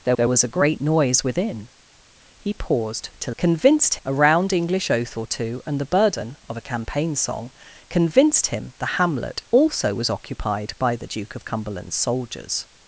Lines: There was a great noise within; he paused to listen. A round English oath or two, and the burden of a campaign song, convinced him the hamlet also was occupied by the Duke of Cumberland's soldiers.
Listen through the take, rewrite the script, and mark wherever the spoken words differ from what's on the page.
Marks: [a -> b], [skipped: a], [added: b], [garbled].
There [added: there] was a great noise within; he paused to [listen. -> convinced] A round English oath or two, and the burden of a campaign song, convinced him the hamlet also was occupied by the Duke of Cumberland's soldiers.